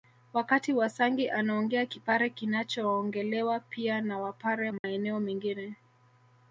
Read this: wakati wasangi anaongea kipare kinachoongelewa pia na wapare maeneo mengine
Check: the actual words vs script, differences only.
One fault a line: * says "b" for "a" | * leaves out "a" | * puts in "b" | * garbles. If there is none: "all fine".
all fine